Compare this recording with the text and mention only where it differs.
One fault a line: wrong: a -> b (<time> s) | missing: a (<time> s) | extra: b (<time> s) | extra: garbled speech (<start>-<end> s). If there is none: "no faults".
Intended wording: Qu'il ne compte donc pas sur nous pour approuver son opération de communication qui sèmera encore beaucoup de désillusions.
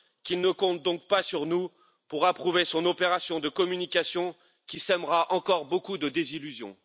no faults